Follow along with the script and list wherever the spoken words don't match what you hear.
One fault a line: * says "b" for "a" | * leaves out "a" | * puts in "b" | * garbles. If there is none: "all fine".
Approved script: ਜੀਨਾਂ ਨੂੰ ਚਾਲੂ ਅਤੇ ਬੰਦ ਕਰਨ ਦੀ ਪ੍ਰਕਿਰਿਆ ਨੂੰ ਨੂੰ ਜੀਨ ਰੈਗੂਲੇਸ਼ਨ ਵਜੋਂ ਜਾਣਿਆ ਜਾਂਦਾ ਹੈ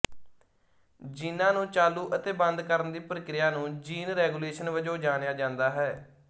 * leaves out "ਨੂੰ"